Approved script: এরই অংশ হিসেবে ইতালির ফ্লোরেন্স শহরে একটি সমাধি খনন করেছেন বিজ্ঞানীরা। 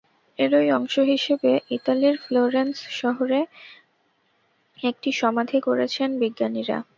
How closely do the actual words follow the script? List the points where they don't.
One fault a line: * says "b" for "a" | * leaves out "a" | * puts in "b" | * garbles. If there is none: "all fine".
* leaves out "খনন"